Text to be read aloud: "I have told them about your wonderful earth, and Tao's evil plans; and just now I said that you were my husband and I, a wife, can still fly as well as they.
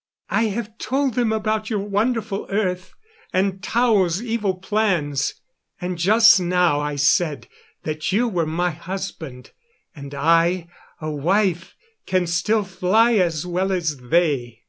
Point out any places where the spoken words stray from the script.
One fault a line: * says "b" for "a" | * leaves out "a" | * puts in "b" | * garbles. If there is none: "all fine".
all fine